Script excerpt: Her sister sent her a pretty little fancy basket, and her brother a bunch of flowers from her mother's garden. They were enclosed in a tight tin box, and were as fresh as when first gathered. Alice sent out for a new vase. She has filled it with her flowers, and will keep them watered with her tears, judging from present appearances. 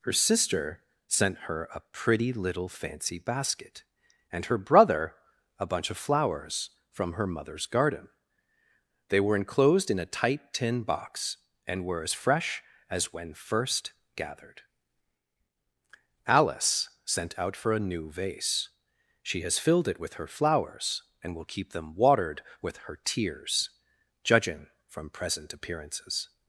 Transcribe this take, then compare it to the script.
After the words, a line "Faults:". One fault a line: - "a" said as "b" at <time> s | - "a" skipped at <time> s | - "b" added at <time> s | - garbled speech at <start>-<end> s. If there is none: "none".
Her sister sent her a pretty little fancy basket, and her brother a bunch of flowers from her mother's garden. They were enclosed in a tight tin box, and were as fresh as when first gathered. Alice sent out for a new vase. She has filled it with her flowers, and will keep them watered with her tears, judging from present appearances.
Faults:
none